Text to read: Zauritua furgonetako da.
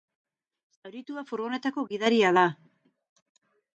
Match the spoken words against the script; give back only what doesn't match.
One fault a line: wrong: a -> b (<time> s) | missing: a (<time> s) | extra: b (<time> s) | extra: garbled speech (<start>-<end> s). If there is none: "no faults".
extra: gidaria (1.9 s)